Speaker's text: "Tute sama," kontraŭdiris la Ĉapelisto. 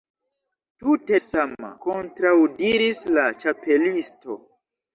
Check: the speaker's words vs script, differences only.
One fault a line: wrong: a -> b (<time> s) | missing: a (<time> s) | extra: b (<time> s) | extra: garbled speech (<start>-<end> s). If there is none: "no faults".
no faults